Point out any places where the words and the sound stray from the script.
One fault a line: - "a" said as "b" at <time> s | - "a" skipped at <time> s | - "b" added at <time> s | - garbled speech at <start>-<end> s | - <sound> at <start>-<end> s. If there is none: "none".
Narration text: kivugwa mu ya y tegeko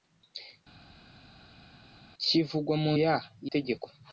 none